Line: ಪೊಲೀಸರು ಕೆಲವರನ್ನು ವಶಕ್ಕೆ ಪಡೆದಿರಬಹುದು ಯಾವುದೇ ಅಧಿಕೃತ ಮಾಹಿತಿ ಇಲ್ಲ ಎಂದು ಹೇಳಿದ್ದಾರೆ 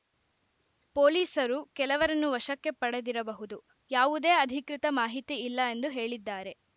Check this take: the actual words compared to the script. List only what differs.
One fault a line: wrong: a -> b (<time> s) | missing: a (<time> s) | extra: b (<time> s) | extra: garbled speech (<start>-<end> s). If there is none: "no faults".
no faults